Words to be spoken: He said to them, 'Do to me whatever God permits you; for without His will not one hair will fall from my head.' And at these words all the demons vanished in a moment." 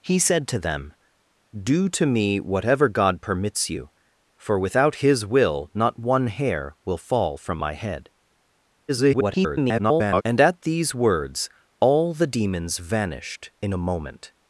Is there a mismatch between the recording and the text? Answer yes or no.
yes